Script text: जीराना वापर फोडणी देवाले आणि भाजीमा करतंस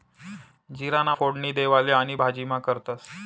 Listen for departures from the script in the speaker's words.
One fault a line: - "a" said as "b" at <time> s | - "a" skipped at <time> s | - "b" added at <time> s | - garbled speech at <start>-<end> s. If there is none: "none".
- "वापर" skipped at 1.1 s